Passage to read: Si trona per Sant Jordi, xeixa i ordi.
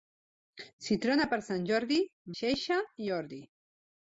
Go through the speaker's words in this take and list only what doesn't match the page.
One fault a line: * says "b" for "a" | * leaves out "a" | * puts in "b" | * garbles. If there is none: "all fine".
all fine